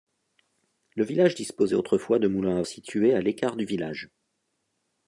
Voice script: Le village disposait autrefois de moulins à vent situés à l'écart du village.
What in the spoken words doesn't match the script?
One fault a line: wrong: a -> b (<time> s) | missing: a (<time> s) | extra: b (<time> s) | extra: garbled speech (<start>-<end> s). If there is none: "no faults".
missing: vent (2.6 s)